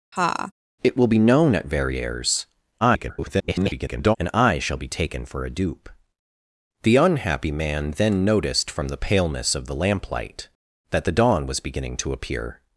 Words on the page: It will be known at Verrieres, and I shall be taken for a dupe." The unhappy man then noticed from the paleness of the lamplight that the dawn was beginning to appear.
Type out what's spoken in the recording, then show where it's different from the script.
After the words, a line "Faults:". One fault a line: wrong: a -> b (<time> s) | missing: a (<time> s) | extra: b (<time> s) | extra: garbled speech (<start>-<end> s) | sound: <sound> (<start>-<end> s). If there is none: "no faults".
It will be known at Verrieres, [garbled] and I shall be taken for a dupe." The unhappy man then noticed from the paleness of the lamplight that the dawn was beginning to appear.
Faults:
sound: laugh (0.1-0.5 s)
extra: garbled speech (2.8-4.2 s)